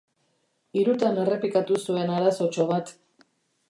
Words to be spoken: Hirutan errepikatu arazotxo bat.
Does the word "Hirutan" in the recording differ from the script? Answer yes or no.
no